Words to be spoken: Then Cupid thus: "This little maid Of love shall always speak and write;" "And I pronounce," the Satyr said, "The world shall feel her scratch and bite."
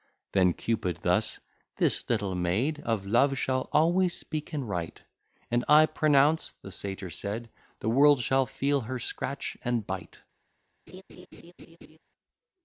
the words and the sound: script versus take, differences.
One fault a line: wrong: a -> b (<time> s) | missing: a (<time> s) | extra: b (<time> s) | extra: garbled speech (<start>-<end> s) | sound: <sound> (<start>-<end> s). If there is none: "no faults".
sound: laugh (10.9-12.0 s)